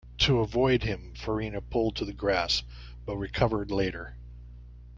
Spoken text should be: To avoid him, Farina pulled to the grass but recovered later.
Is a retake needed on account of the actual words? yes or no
no